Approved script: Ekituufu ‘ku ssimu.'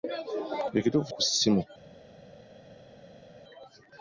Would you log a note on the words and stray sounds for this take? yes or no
no